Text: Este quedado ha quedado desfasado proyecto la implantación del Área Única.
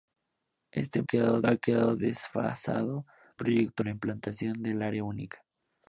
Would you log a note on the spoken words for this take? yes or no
no